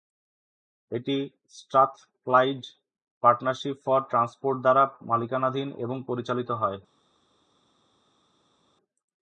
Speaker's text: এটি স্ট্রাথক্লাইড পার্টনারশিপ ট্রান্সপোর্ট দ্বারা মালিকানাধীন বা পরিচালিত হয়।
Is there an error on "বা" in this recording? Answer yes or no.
yes